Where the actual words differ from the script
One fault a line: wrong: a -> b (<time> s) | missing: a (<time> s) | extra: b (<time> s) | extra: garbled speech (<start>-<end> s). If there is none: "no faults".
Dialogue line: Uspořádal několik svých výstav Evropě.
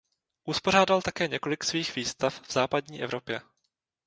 extra: také (1.0 s)
extra: v západní (2.4 s)